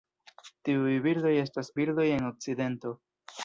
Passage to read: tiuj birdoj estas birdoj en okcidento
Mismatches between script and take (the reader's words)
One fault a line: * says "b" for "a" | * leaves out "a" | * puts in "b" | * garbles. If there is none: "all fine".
all fine